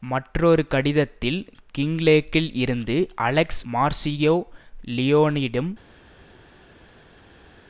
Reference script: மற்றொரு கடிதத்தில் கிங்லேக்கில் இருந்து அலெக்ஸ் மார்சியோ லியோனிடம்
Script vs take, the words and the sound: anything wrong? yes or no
no